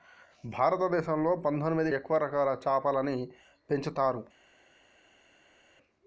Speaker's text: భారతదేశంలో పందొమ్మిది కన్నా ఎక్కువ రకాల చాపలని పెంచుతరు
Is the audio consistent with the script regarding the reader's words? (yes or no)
no